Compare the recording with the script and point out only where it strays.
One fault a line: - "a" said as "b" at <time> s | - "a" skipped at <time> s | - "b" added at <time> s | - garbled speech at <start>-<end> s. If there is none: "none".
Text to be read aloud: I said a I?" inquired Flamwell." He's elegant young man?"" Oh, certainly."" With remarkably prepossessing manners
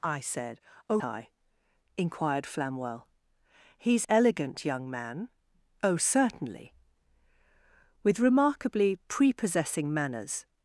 none